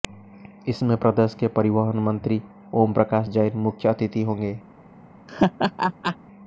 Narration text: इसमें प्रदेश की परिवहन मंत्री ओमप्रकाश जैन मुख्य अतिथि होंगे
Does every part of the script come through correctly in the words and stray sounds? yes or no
no